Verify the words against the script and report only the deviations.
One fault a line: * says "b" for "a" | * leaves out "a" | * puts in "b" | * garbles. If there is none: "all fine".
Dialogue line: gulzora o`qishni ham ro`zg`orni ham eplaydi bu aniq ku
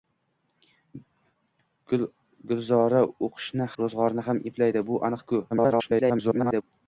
* leaves out "ham"
* garbles